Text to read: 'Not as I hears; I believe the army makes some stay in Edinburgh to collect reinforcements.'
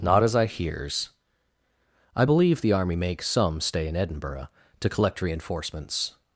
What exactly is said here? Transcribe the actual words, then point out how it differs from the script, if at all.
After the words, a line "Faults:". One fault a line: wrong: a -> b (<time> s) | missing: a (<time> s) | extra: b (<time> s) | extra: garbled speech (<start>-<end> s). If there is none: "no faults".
'Not as I hears; I believe the army makes some stay in Edinburgh to collect reinforcements.'
Faults:
no faults